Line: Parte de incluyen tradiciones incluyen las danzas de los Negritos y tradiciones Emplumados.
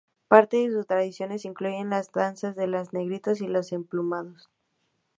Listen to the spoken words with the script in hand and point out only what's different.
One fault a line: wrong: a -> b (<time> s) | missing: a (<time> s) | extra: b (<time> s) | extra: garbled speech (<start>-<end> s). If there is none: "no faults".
wrong: incluyen -> sus (0.7 s)
wrong: tradiciones -> los (3.5 s)